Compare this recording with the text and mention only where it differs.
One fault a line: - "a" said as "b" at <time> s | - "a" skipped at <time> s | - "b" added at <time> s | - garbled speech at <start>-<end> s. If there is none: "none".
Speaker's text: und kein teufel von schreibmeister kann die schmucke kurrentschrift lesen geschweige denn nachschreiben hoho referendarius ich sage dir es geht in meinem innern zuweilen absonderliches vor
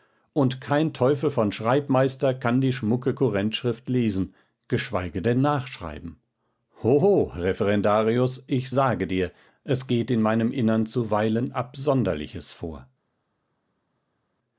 none